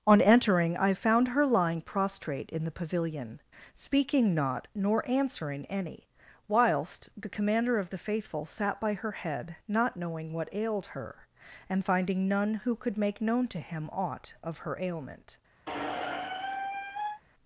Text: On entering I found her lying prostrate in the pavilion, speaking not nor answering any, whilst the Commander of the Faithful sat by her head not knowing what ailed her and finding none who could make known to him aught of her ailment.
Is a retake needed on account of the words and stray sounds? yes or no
yes